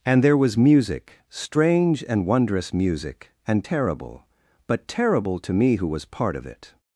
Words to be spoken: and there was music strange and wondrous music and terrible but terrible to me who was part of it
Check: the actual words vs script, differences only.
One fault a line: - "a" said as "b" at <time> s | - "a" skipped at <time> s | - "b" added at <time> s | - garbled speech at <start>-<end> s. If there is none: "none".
none